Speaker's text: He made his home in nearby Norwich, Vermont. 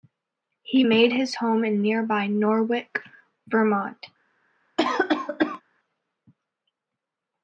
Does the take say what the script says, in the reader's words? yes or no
yes